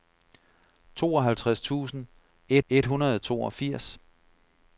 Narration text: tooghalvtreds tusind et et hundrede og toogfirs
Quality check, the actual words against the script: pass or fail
pass